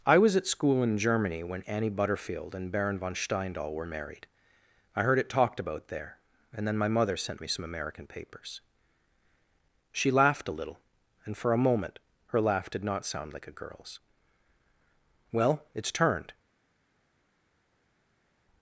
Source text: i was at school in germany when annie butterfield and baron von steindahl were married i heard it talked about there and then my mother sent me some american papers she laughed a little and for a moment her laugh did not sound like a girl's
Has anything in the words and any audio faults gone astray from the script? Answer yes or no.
yes